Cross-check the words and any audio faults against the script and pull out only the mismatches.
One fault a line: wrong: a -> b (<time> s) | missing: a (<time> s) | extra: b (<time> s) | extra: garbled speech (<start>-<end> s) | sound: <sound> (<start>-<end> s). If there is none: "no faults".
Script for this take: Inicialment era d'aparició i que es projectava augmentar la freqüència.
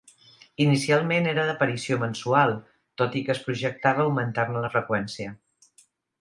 extra: mensual tot (2.0 s)
extra: ne (4.5 s)